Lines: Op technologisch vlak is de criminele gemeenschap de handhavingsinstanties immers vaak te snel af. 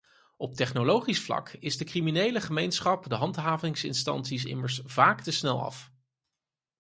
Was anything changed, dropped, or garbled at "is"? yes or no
no